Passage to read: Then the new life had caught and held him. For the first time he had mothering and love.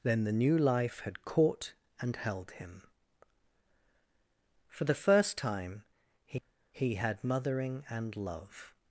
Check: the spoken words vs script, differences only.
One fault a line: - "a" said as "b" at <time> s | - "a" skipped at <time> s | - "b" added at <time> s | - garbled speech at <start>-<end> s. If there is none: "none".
- "he" added at 6.7 s